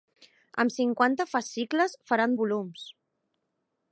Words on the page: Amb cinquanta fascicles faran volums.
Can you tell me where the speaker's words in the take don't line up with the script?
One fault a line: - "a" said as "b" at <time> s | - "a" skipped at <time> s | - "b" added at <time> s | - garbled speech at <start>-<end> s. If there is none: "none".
none